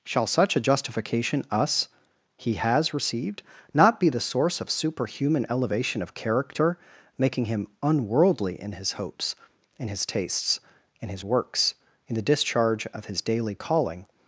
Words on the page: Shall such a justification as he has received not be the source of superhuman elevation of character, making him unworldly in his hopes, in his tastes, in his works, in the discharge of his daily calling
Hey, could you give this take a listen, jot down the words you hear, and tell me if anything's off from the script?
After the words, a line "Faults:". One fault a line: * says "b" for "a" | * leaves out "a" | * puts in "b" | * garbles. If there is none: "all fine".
Shall such a justification us he has received not be the source of superhuman elevation of character, making him unworldly in his hopes, in his tastes, in his works, in the discharge of his daily calling
Faults:
* says "us" for "as"